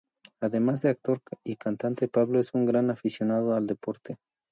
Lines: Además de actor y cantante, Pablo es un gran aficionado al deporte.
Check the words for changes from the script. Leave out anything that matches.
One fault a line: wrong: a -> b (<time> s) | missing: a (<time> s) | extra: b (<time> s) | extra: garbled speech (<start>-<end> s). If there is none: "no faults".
no faults